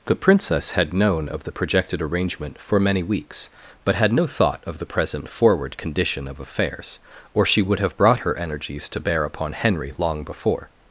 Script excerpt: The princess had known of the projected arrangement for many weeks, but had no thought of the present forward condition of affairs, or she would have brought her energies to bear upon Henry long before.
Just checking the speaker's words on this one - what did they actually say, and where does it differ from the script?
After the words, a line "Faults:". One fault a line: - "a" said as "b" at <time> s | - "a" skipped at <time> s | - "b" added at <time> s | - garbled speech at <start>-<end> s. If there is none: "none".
The princess had known of the projected arrangement for many weeks, but had no thought of the present forward condition of affairs, or she would have brought her energies to bear upon Henry long before.
Faults:
none